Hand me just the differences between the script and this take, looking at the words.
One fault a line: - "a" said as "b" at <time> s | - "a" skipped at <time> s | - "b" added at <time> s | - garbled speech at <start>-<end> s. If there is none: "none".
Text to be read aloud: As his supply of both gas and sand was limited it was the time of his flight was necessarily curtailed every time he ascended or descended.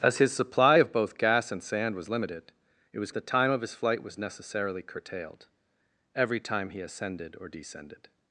none